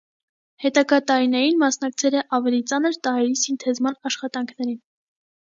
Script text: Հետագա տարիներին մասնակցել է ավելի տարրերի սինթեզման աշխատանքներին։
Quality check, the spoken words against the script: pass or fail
fail